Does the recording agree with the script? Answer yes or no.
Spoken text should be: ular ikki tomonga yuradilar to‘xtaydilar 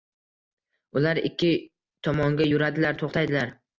yes